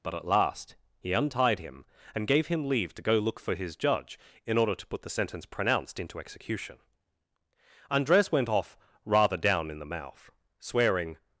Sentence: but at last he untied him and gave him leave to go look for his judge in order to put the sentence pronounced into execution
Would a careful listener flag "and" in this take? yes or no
no